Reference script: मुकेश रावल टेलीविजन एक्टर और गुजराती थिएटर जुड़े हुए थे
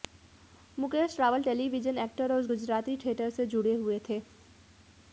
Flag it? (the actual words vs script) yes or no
yes